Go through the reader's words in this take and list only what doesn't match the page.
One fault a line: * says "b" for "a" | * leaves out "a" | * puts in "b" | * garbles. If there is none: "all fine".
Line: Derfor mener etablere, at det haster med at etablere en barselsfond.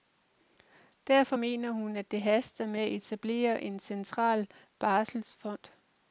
* says "hun" for "etablere"
* puts in "central"